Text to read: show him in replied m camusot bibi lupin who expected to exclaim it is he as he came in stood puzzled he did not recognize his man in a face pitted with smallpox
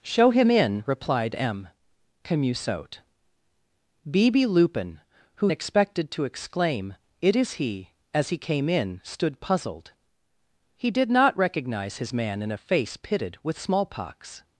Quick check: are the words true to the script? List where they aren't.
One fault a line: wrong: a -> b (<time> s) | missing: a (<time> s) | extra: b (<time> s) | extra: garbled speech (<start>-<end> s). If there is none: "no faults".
no faults